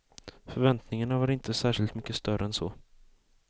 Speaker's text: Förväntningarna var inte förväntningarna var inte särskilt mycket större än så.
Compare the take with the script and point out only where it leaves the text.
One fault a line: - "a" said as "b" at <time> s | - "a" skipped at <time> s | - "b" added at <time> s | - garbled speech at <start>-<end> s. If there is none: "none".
- "förväntningarna var inte" skipped at 1.5 s